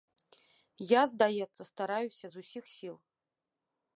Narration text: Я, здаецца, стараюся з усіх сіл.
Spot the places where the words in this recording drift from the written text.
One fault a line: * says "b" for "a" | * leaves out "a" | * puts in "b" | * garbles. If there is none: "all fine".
all fine